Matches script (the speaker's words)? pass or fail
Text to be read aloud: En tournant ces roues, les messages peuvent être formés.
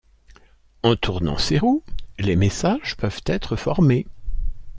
pass